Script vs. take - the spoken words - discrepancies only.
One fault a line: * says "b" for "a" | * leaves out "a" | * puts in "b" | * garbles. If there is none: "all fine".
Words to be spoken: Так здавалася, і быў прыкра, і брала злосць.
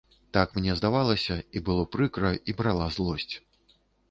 * puts in "мне"
* says "было" for "быў"